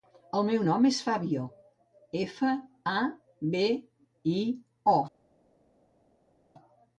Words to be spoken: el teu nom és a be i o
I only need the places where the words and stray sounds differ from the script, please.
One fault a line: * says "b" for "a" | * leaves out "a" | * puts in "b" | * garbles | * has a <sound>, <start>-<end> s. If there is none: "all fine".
* says "meu" for "teu"
* puts in "fabio efa"